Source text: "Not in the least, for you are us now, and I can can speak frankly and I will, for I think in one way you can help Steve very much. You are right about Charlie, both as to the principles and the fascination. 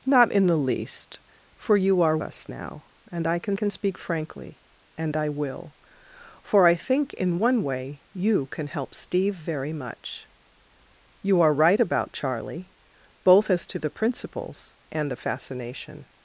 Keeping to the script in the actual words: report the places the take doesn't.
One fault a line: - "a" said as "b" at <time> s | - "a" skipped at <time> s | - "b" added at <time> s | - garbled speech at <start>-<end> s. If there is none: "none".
none